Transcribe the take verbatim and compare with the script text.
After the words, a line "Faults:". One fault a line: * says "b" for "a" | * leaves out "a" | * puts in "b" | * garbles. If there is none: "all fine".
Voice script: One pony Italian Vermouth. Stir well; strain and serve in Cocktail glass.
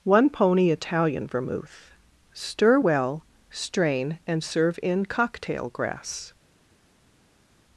One pony Italian Vermouth. Stir well; strain and serve in Cocktail grass.
Faults:
* says "grass" for "glass"